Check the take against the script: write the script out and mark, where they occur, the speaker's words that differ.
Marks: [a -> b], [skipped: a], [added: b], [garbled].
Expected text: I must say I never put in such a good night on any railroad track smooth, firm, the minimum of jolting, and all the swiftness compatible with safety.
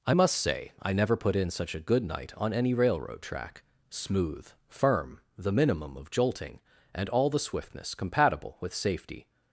I must say I never put in such a good night on any railroad track smooth, firm, the minimum of jolting, and all the swiftness compatible with safety.